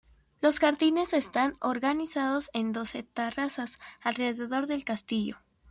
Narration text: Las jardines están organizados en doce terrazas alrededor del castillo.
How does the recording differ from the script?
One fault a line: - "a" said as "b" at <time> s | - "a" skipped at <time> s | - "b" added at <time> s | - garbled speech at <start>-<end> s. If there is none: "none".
- "Las" said as "Los" at 0.4 s